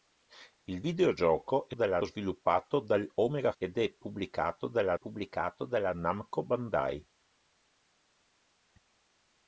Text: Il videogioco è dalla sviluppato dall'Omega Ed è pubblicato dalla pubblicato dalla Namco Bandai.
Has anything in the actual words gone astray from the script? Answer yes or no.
no